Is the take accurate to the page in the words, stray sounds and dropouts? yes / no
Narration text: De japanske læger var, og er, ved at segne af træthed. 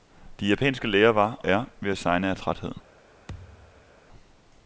no